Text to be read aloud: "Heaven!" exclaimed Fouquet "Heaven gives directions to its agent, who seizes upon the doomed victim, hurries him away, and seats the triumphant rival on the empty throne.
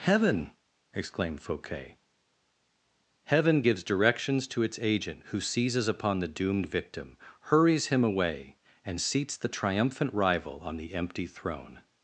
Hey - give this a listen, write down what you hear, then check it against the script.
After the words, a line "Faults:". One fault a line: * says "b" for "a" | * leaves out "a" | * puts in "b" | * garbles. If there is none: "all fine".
"Heaven!" exclaimed Fouquet "Heaven gives directions to its agent, who seizes upon the doomed victim, hurries him away, and seats the triumphant rival on the empty throne.
Faults:
all fine